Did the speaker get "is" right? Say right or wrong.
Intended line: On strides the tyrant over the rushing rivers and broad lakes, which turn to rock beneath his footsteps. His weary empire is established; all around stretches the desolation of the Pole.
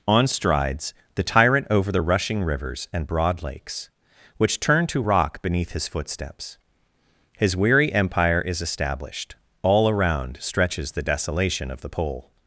right